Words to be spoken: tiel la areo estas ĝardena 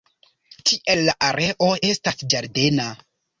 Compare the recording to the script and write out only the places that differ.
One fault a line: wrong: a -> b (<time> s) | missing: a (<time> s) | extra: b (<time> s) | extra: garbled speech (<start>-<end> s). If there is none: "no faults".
no faults